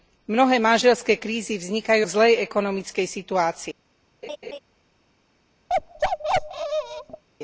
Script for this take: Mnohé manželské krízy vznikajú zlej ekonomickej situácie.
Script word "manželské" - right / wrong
right